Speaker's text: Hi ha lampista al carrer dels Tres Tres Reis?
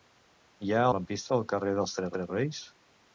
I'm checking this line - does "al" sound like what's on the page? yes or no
yes